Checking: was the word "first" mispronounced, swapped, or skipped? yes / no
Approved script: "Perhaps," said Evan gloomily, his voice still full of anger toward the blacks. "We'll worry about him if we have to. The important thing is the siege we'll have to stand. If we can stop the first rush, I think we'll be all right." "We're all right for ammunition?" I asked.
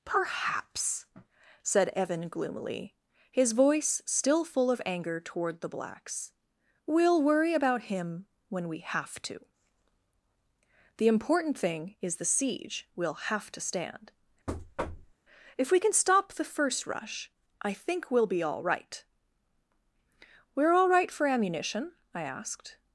no